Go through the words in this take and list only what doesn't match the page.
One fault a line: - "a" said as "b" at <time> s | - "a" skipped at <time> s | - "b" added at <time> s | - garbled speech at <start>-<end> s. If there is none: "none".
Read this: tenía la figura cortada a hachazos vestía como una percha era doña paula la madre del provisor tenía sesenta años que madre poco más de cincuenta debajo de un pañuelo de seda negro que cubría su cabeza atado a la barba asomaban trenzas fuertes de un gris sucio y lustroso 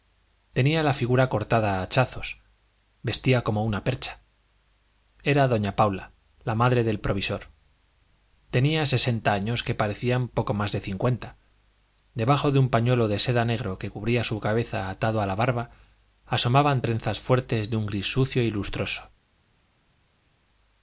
- "madre" said as "parecían" at 9.8 s